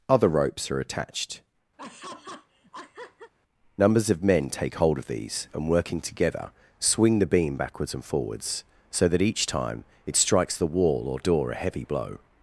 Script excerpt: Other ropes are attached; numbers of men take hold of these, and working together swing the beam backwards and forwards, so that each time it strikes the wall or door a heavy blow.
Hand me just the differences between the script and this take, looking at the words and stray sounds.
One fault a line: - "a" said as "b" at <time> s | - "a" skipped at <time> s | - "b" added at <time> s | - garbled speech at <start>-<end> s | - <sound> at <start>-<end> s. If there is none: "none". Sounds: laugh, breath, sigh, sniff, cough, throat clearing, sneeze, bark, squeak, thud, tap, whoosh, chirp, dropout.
- laugh at 1.8-3.3 s